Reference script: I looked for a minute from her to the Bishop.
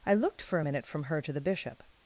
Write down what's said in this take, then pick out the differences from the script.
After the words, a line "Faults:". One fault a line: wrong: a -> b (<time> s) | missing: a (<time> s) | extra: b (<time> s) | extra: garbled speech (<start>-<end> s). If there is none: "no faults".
I looked for a minute from her to the Bishop.
Faults:
no faults